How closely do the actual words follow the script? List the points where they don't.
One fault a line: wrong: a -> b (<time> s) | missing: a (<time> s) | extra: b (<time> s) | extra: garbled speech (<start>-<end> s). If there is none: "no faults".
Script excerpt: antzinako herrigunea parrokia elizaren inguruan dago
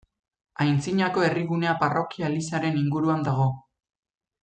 no faults